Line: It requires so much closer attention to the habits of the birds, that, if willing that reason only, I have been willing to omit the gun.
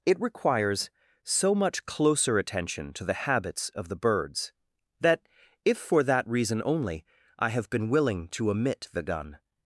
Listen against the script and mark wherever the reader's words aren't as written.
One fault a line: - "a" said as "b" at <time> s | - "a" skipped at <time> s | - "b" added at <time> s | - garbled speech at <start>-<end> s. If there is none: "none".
- "willing" said as "for" at 5.8 s